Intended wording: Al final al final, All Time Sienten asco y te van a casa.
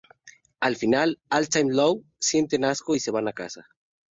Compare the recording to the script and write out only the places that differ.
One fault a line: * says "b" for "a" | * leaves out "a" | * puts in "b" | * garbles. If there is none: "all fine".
* leaves out "al final"
* puts in "Low"
* says "se" for "te"